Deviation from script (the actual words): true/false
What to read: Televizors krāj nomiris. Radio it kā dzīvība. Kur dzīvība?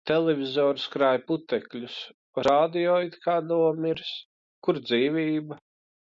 true